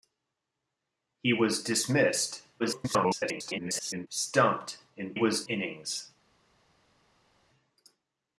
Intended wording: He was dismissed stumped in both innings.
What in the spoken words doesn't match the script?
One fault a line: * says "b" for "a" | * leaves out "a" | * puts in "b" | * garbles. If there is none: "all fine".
* garbles
* says "was" for "both"